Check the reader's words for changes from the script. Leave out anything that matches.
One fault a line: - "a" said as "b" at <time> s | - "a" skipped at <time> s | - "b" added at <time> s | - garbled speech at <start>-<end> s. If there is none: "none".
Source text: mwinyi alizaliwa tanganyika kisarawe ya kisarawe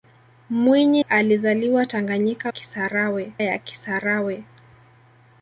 none